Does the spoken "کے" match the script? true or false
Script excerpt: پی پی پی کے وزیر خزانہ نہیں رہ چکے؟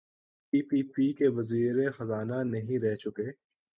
true